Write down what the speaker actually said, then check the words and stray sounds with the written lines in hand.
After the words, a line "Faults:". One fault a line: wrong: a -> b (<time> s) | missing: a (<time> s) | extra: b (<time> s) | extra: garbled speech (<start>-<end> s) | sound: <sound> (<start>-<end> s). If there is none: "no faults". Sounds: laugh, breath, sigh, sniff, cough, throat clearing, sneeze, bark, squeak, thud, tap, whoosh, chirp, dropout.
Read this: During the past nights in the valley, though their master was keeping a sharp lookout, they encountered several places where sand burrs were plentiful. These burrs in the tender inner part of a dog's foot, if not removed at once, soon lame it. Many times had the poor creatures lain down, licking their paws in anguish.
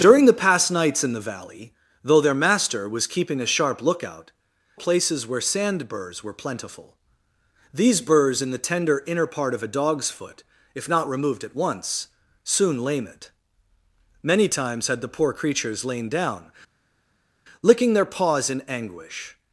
During the past nights in the valley, though their master was keeping a sharp lookout, places where sand burrs were plentiful. These burrs in the tender inner part of a dog's foot, if not removed at once, soon lame it. Many times had the poor creatures lain down, licking their paws in anguish.
Faults:
missing: they encountered several (4.3 s)